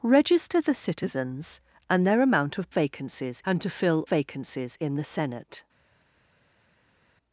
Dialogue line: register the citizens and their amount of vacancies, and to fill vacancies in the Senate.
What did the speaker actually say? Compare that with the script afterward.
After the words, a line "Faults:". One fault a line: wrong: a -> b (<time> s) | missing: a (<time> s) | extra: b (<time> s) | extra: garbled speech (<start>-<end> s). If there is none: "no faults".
register the citizens and their amount of vacancies, and to fill vacancies in the Senate.
Faults:
no faults